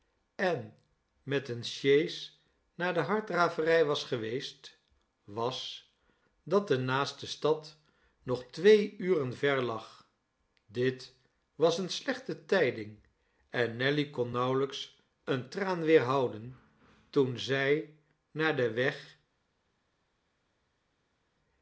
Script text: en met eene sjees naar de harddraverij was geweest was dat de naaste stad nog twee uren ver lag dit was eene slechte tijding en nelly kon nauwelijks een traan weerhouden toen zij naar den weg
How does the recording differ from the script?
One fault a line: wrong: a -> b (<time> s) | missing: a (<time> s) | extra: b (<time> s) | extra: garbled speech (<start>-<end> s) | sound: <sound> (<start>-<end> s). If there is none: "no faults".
no faults